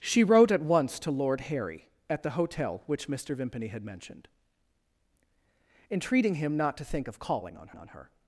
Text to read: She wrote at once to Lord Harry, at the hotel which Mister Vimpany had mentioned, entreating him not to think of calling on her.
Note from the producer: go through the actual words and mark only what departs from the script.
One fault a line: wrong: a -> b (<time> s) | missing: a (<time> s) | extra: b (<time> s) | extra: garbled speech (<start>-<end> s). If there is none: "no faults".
extra: on (7.7 s)